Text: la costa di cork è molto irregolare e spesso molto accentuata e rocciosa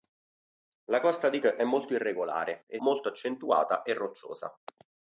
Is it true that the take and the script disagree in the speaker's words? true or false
true